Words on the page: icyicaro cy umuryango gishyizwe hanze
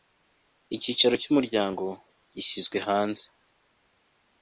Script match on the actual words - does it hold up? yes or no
yes